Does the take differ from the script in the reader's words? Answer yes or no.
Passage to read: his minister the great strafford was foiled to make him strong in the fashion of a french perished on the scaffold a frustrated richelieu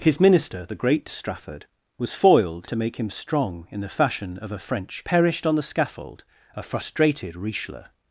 no